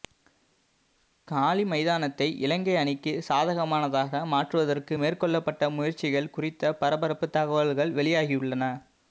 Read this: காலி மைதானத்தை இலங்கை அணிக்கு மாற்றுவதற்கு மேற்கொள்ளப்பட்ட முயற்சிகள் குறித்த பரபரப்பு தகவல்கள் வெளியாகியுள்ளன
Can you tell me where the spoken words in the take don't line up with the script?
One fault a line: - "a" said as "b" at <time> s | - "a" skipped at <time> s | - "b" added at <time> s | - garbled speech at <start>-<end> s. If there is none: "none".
- "சாதகமானதாக" added at 3.3 s